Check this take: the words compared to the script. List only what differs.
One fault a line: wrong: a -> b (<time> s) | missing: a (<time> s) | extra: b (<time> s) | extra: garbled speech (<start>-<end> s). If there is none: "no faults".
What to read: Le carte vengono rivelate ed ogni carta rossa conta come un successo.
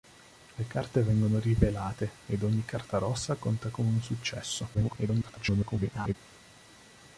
extra: garbled speech (4.7-6.1 s)